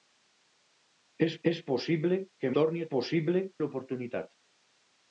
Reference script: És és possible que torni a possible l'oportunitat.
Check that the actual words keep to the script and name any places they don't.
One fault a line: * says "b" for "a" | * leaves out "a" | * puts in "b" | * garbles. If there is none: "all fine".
all fine